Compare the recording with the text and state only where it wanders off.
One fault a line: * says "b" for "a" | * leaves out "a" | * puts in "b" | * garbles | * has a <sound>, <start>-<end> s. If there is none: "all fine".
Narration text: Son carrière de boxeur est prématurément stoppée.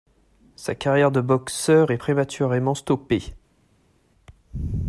* says "Sa" for "Son"